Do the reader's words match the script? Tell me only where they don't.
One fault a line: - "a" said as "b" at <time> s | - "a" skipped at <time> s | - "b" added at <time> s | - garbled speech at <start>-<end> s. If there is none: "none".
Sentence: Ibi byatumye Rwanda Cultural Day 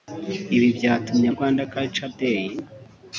none